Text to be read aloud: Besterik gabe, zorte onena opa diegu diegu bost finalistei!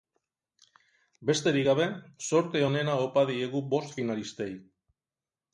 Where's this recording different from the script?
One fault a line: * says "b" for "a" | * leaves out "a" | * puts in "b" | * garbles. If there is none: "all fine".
* leaves out "diegu"